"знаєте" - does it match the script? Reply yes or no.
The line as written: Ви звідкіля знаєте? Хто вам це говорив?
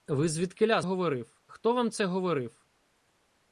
no